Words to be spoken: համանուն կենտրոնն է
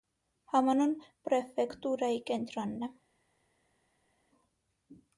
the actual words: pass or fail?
fail